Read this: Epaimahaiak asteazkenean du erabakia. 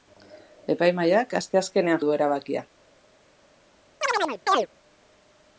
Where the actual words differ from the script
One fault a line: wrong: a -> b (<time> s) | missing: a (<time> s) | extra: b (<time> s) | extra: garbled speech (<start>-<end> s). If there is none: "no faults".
no faults